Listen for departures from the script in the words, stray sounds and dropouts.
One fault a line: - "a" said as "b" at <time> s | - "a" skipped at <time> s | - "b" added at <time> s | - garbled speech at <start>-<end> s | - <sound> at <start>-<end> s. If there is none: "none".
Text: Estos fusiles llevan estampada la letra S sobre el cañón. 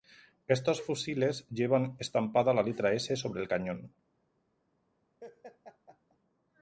- laugh at 5.2-6.2 s